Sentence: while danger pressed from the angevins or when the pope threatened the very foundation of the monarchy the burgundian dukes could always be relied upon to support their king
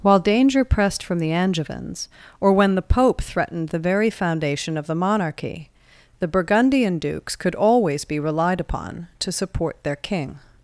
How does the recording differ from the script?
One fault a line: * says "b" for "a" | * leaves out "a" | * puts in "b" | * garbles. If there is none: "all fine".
all fine